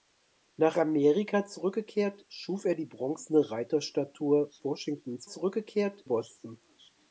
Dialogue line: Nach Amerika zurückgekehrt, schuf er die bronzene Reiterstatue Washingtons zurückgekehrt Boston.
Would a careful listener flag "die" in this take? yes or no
no